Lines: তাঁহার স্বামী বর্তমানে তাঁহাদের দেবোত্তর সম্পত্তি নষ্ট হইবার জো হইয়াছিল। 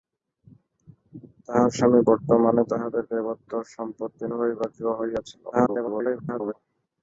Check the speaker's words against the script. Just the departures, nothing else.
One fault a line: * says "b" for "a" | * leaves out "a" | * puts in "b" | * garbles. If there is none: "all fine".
* leaves out "নষ্ট"
* garbles